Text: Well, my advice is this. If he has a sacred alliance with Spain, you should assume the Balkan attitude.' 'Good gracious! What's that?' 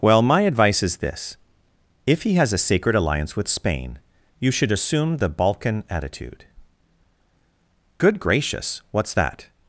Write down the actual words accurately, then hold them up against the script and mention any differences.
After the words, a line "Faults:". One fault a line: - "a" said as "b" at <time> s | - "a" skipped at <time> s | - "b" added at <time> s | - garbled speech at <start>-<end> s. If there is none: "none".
Well, my advice is this. If he has a sacred alliance with Spain, you should assume the Balkan attitude.' 'Good gracious! What's that?'
Faults:
none